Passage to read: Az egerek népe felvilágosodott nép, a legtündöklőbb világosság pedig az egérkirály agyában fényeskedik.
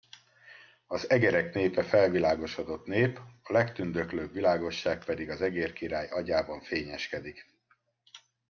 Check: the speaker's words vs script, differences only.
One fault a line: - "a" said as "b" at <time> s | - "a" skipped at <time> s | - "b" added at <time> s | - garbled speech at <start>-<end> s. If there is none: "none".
none